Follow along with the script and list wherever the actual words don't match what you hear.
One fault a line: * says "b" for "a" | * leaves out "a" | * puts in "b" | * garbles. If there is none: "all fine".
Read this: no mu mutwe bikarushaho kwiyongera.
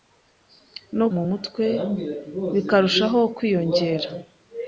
all fine